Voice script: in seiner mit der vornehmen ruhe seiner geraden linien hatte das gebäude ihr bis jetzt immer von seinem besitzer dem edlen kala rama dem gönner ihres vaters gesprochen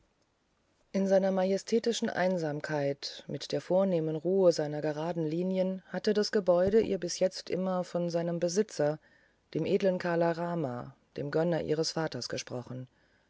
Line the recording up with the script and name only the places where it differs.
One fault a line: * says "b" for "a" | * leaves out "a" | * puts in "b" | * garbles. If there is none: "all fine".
* puts in "majestätischen einsamkeit"